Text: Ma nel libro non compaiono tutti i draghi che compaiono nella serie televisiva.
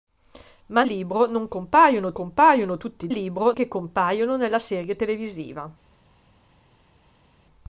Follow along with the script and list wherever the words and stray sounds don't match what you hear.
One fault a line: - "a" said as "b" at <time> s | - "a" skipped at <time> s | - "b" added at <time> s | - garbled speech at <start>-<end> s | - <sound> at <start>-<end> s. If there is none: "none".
- "nel" skipped at 0.8 s
- "compaiono" added at 2.1 s
- "draghi" said as "libro" at 3.1 s